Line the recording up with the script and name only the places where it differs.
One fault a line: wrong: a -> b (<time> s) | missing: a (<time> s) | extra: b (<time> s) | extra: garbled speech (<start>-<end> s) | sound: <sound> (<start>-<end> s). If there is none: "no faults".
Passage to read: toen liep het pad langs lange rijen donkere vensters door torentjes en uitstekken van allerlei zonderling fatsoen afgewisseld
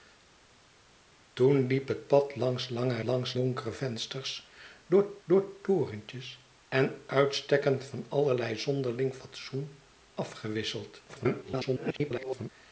wrong: rijen -> langs (3.0 s)
extra: door (5.2 s)
extra: garbled speech (11.1-12.5 s)